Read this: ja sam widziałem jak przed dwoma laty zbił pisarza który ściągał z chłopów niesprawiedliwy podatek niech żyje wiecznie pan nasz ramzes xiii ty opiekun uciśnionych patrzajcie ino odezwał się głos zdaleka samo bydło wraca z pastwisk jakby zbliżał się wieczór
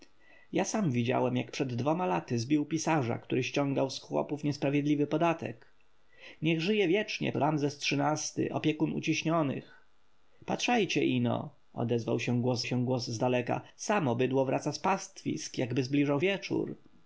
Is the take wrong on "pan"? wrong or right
wrong